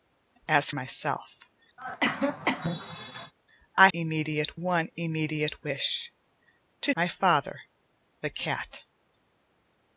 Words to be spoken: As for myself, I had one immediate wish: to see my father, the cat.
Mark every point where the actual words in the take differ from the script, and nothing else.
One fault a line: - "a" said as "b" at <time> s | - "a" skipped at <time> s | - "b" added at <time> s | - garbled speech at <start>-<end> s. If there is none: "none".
- "for" skipped at 0.7 s
- "had" said as "immediate" at 3.9 s
- "see" skipped at 6.9 s